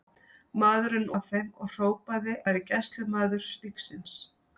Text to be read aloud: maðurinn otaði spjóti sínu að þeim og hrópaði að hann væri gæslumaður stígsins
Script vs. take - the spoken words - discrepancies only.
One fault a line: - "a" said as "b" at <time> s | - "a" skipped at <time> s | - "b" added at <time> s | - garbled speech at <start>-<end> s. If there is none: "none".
- "otaði spjóti sínu" skipped at 1.0 s
- "að hann" skipped at 2.3 s